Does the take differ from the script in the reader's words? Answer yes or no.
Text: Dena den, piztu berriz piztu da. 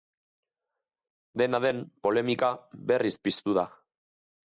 yes